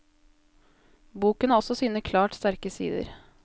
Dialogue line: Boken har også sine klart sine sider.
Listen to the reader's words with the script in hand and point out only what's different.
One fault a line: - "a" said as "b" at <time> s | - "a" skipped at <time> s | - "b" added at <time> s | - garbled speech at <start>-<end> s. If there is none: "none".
- "sine" said as "sterke" at 2.3 s